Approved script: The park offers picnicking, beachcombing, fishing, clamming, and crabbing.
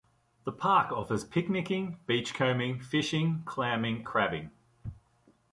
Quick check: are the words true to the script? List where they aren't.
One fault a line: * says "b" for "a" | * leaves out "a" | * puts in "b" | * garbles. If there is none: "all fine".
* leaves out "and"